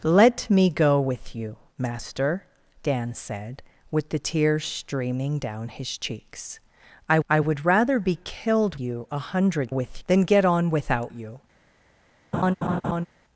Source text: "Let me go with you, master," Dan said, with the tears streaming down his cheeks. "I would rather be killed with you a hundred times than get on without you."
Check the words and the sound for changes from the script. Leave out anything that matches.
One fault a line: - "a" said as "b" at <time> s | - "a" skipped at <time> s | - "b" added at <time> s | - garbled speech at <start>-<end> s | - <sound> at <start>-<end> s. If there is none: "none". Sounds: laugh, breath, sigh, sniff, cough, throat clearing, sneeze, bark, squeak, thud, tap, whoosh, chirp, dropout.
- "I" added at 7.3 s
- "with" skipped at 8.8 s
- "times" said as "with" at 9.7 s
- laugh at 12.3-13.1 s